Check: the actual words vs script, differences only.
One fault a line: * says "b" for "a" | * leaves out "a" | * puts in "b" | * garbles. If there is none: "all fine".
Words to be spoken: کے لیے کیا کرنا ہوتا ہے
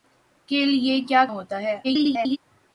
* leaves out "کرنا"
* garbles